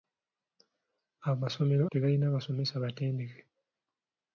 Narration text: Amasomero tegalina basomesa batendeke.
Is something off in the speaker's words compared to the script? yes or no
no